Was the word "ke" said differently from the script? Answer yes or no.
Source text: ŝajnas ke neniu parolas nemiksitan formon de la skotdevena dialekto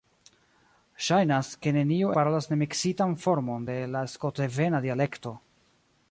no